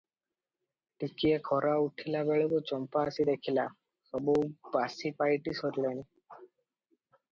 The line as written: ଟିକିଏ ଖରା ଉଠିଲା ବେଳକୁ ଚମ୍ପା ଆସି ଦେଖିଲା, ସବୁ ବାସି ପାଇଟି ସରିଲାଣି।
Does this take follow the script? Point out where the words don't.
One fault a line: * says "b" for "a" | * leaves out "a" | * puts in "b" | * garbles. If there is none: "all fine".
all fine